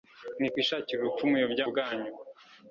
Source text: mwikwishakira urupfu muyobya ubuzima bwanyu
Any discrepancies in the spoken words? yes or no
yes